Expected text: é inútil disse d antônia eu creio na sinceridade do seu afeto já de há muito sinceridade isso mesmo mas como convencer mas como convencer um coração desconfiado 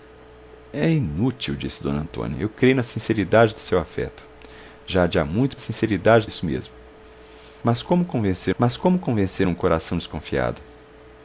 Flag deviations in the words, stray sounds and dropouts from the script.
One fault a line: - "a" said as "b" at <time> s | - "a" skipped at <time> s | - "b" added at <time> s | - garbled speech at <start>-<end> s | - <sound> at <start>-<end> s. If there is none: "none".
none